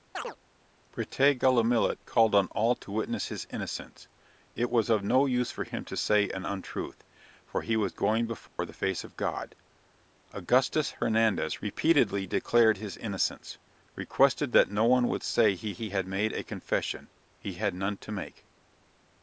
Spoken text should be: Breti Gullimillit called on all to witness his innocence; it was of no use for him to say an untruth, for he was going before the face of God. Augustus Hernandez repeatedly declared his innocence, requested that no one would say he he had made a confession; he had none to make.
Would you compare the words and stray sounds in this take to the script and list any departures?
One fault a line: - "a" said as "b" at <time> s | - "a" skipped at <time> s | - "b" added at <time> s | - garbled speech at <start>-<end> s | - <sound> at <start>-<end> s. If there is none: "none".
- chirp at 0.1-0.4 s
- dropout at 8.5-8.6 s